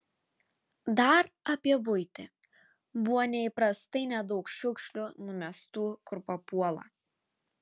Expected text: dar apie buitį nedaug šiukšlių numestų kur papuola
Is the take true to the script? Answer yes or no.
no